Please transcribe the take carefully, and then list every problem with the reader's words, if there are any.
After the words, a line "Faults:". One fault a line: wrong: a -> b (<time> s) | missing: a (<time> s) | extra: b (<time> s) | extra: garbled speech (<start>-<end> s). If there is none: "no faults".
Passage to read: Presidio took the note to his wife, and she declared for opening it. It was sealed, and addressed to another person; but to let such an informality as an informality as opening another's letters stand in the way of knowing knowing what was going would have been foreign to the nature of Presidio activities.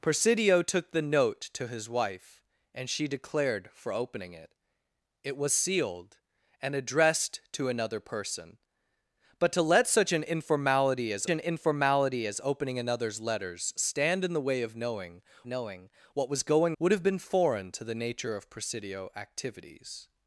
Presidio took the note to his wife, and she declared for opening it. It was sealed, and addressed to another person; but to let such an informality as an informality as opening another's letters stand in the way of knowing knowing what was going would have been foreign to the nature of Presidio activities.
Faults:
no faults